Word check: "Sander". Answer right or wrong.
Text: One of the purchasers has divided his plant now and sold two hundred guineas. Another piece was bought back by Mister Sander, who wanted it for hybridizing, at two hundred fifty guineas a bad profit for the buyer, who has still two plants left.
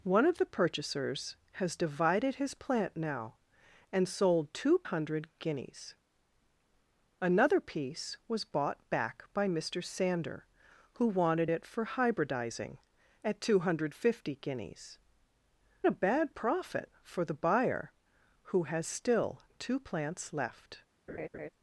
right